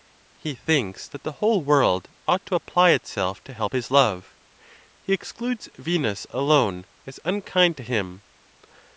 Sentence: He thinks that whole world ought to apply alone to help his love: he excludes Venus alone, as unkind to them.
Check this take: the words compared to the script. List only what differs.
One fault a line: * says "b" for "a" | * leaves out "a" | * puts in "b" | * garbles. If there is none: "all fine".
* puts in "the"
* says "itself" for "alone"
* says "him" for "them"